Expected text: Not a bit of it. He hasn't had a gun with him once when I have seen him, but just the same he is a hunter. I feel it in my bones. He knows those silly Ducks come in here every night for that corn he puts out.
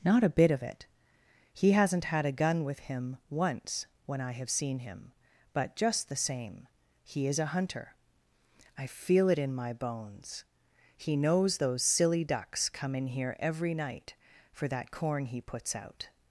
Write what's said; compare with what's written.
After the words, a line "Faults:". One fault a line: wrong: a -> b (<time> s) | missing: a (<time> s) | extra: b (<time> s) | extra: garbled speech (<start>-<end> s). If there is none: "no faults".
Not a bit of it. He hasn't had a gun with him once when I have seen him, but just the same he is a hunter. I feel it in my bones. He knows those silly Ducks come in here every night for that corn he puts out.
Faults:
no faults